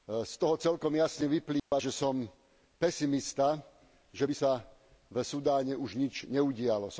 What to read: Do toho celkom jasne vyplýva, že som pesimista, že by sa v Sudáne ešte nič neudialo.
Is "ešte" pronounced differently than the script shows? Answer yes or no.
yes